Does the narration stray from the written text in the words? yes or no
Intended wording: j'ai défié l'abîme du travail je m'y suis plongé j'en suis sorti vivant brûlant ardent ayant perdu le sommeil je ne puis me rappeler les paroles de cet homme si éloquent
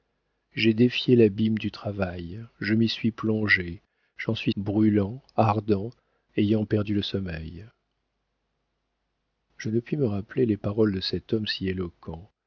yes